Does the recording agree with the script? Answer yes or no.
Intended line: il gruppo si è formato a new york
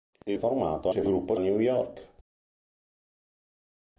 no